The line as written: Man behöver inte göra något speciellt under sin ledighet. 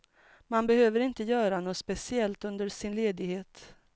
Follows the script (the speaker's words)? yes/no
yes